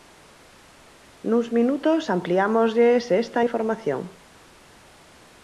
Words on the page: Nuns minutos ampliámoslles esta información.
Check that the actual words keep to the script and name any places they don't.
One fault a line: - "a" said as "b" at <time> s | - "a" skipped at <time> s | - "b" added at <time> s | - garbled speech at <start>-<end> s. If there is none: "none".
none